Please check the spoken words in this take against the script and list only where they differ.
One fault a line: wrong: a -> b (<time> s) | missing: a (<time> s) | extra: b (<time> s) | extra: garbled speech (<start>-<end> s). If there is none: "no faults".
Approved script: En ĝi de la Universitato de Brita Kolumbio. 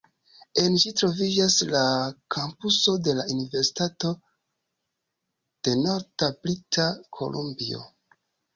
extra: troviĝas la kampuso (1.0 s)
extra: Norda (5.8 s)